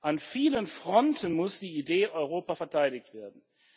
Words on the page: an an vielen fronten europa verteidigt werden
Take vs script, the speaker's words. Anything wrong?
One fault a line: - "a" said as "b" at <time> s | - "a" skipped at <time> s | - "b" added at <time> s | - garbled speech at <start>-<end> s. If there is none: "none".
- "an" skipped at 0.2 s
- "muss die idee" added at 1.3 s